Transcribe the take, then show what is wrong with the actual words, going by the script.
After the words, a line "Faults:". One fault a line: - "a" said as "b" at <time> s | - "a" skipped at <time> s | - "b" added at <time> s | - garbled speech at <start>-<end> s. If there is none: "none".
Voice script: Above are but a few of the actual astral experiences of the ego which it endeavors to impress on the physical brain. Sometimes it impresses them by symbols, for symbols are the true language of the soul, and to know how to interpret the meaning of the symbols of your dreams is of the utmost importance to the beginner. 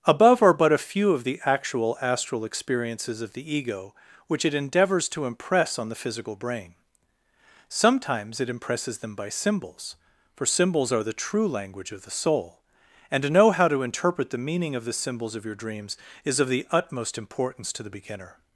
Above are but a few of the actual astral experiences of the ego which it endeavors to impress on the physical brain. Sometimes it impresses them by symbols, for symbols are the true language of the soul, and to know how to interpret the meaning of the symbols of your dreams is of the utmost importance to the beginner.
Faults:
none